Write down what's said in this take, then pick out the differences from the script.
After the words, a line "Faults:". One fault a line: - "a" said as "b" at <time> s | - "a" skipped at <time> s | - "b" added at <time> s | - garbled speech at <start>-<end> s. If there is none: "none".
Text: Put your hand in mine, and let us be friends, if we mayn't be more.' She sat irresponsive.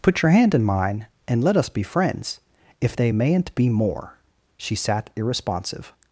Put your hand in mine, and let us be friends, if they mayn't be more.' She sat irresponsive.
Faults:
- "we" said as "they" at 2.9 s